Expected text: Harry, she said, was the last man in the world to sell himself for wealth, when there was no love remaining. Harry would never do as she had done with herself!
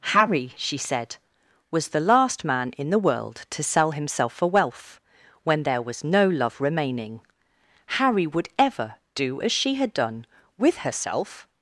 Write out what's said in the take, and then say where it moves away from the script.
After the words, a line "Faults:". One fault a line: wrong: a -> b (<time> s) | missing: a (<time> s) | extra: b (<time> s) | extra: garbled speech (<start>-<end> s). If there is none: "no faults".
Harry, she said, was the last man in the world to sell himself for wealth, when there was no love remaining. Harry would ever do as she had done with herself!
Faults:
wrong: never -> ever (8.6 s)